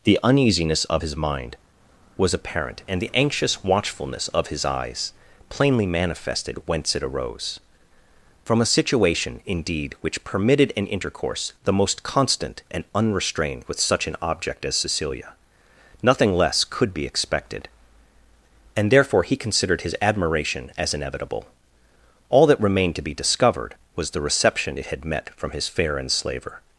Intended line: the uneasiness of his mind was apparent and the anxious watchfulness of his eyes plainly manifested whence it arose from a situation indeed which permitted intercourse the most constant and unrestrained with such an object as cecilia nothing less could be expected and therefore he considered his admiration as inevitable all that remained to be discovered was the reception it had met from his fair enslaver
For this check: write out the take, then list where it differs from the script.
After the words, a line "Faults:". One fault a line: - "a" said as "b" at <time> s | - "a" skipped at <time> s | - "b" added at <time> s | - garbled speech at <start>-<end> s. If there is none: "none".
the uneasiness of his mind was apparent and the anxious watchfulness of his eyes plainly manifested whence it arose from a situation indeed which permitted an intercourse the most constant and unrestrained with such an object as cecilia nothing less could be expected and therefore he considered his admiration as inevitable all that remained to be discovered was the reception it had met from his fair enslaver
Faults:
- "an" added at 10.8 s